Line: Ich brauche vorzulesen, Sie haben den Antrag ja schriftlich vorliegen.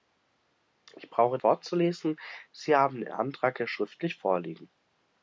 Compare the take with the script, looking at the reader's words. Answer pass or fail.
pass